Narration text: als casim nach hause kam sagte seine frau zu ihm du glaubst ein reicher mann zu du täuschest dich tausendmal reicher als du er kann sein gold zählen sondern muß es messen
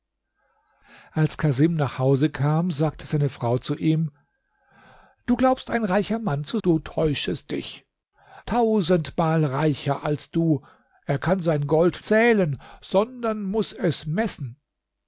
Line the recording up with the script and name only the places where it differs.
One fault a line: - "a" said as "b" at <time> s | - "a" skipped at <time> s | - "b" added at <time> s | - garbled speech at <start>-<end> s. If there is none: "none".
none